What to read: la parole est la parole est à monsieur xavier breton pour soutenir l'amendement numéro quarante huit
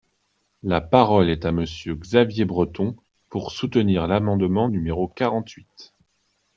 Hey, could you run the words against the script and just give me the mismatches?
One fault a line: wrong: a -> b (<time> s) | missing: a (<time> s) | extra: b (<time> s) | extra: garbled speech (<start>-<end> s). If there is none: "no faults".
missing: la parole est (1.4 s)